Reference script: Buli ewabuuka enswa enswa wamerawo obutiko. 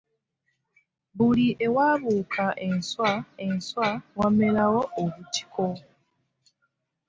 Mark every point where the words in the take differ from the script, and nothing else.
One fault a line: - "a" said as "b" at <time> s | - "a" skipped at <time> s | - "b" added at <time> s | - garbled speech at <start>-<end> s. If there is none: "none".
none